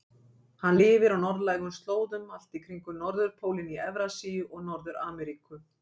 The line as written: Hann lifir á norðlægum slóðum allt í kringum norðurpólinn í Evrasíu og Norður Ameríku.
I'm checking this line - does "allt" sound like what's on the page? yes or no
yes